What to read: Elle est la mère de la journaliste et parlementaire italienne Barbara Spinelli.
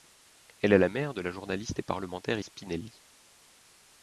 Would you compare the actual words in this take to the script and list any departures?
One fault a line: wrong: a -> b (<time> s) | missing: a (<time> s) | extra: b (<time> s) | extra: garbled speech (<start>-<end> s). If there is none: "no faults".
missing: italienne Barbara (2.4 s)